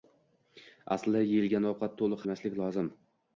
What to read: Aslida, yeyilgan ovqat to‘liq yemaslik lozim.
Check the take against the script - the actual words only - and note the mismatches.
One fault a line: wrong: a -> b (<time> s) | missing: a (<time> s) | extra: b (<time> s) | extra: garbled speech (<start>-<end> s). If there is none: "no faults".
no faults